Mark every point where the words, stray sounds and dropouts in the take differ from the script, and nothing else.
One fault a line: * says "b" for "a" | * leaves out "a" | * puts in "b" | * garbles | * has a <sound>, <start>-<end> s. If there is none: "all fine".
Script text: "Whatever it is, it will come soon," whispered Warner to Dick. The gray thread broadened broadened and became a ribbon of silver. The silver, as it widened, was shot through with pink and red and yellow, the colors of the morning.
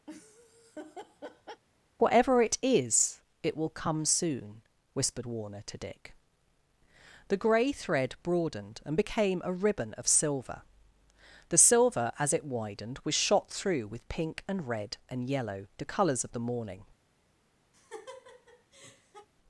* has a laugh, 0.1-1.6 s
* leaves out "broadened"
* has a laugh, 17.7-19.3 s